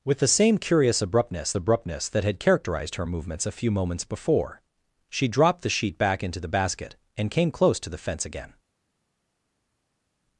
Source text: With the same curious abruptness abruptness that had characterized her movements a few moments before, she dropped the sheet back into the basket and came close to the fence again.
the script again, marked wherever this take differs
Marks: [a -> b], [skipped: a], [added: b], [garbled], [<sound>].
With the same curious abruptness abruptness that had characterized her movements a few moments before, she dropped the sheet back into the basket and came close to the fence again.